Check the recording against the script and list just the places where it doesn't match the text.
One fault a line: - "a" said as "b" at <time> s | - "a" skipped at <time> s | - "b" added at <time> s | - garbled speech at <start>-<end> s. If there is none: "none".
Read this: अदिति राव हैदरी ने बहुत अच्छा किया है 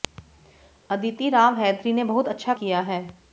none